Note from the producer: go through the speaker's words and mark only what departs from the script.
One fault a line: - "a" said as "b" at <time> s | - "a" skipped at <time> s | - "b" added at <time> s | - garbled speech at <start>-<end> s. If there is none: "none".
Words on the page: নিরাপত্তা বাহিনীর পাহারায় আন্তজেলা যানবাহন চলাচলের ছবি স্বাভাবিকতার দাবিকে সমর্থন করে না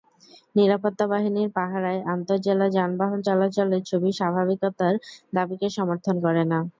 none